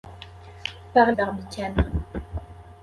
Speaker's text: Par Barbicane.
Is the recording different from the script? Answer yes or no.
no